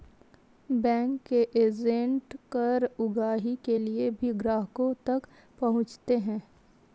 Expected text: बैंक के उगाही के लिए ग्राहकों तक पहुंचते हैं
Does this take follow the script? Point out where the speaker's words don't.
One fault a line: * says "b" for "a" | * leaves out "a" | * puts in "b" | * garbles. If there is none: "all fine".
* puts in "एजेंट कर"
* puts in "भी"